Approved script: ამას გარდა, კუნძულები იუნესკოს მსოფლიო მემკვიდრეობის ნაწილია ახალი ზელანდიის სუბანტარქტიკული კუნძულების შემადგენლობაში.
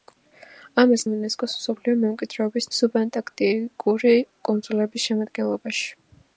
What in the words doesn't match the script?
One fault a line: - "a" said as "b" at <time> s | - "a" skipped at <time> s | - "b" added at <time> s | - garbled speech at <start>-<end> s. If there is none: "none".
- "გარდა კუნძულები" skipped at 1.0 s
- "ნაწილია ახალი ზელანდიის" skipped at 2.7 s